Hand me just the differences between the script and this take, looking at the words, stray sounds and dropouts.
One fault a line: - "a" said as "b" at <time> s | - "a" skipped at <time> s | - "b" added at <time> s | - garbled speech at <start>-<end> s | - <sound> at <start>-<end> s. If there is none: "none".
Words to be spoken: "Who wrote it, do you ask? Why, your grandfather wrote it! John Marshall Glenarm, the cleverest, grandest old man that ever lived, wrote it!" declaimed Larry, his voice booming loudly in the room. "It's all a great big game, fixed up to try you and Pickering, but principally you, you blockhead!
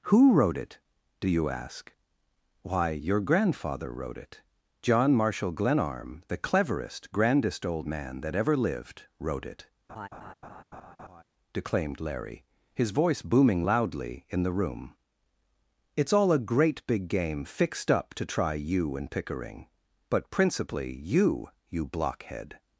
- laugh at 9.9-11.2 s